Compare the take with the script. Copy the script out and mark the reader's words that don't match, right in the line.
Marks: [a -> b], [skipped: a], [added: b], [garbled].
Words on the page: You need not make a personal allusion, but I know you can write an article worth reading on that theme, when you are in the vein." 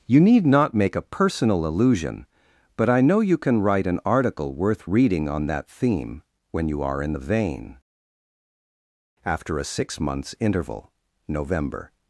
You need not make a personal allusion, but I know you can write an article worth reading on that theme, when you are in the vein." [added: After a six months interval November]